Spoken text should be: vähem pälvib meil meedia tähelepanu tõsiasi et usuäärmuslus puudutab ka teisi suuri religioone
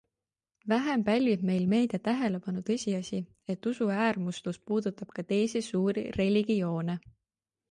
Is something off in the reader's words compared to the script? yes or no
no